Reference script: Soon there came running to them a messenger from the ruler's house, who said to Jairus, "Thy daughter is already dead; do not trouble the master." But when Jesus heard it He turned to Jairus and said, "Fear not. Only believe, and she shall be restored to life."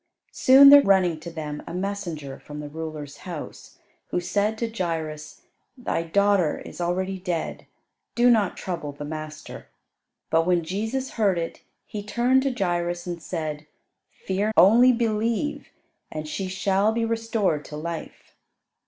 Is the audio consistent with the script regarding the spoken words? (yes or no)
no